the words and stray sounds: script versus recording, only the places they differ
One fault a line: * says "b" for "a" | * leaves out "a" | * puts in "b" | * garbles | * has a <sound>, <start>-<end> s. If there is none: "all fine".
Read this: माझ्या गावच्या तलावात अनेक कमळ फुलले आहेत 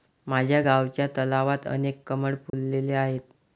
* has a dropout, 2.5-2.5 s